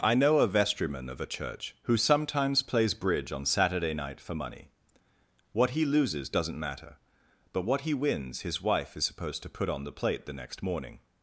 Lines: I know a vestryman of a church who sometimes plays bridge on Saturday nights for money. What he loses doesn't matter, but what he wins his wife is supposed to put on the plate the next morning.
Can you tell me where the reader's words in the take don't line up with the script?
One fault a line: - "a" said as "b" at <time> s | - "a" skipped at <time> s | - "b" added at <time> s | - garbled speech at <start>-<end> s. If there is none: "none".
- "nights" said as "night" at 3.9 s